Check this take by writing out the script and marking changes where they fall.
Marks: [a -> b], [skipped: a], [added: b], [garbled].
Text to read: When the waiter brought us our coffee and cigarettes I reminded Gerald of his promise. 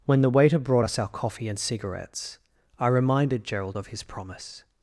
When the waiter brought us our coffee and cigarettes I reminded Gerald of his promise.